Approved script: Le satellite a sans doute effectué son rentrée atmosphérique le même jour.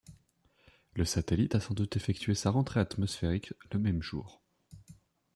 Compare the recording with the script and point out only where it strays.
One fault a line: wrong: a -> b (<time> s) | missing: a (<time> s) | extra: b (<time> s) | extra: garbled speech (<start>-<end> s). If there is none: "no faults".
wrong: son -> sa (2.3 s)